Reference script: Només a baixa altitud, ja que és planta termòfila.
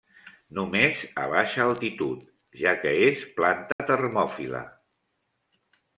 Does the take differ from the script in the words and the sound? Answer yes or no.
yes